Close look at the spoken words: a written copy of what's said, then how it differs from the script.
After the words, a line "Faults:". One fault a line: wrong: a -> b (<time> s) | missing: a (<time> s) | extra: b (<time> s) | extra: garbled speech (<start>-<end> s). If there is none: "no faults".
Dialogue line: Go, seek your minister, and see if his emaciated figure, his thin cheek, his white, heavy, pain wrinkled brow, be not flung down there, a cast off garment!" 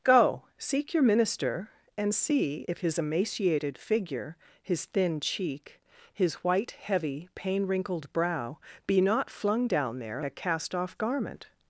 Go, seek your minister, and see if his emaciated figure, his thin cheek, his white, heavy, pain wrinkled brow, be not flung down there, a cast off garment!"
Faults:
no faults